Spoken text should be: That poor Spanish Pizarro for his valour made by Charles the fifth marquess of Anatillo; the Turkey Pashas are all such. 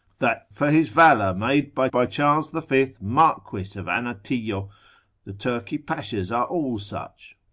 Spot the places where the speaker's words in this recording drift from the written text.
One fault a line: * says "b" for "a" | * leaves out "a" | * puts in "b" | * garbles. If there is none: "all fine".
* leaves out "poor Spanish Pizarro"
* puts in "by"